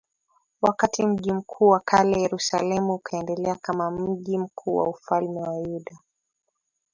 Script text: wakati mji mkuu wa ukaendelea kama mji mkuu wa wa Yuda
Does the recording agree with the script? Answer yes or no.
no